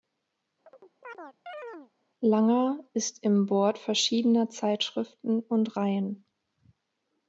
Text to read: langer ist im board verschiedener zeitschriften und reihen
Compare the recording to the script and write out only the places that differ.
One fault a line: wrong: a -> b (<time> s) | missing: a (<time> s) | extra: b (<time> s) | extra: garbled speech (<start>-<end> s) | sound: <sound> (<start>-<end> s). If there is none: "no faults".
sound: chirp (0.7-1.9 s)